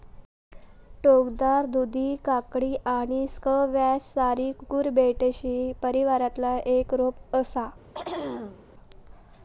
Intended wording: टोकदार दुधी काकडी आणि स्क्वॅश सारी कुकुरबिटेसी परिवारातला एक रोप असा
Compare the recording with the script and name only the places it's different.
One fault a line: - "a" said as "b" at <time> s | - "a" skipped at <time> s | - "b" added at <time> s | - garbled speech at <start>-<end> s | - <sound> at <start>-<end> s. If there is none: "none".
- throat clearing at 7.9-8.6 s